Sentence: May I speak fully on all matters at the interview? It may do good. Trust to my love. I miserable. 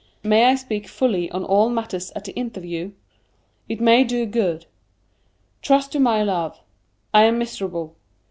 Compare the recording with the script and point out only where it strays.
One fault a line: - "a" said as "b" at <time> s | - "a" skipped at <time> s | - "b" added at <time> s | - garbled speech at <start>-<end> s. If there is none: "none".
- "am" added at 7.2 s